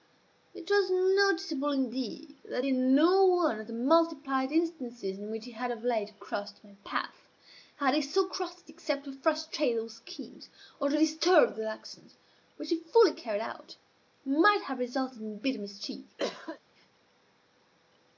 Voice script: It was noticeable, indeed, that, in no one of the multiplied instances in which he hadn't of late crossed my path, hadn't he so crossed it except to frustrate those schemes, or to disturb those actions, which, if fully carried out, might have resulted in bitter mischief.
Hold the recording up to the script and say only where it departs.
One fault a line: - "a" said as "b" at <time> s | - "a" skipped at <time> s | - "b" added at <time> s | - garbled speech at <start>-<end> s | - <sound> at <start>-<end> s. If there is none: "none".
- "hadn't" said as "had" at 5.5 s
- "hadn't" said as "had" at 7.8 s
- cough at 16.2-16.6 s